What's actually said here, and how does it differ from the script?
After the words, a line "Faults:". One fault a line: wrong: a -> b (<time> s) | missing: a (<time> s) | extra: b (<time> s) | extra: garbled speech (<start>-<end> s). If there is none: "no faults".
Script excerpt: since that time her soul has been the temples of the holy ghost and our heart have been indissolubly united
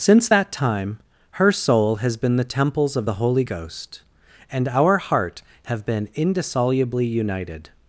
since that time her soul has been the temples of the holy ghost and our heart have been indissolubly united
Faults:
no faults